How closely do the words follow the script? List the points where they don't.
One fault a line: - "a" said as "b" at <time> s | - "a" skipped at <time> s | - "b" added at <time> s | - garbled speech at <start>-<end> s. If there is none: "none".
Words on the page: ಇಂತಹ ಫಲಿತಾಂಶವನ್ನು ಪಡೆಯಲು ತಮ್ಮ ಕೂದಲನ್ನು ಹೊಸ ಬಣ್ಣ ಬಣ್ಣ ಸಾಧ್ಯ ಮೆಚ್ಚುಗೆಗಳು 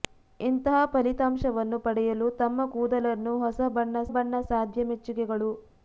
none